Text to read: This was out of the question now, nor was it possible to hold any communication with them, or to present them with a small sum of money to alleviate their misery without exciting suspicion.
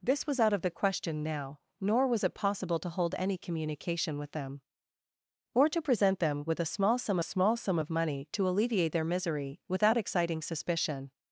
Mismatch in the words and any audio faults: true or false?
true